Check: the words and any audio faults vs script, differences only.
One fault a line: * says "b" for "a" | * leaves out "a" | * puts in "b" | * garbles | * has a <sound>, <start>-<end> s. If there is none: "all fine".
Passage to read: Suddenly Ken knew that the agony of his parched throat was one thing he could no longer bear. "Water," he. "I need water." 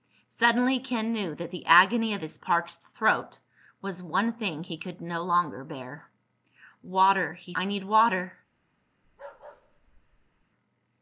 * has a bark, 9.0-10.5 s